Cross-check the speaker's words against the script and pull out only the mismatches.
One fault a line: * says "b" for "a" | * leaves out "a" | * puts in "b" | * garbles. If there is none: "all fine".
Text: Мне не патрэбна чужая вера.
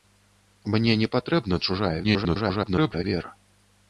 * garbles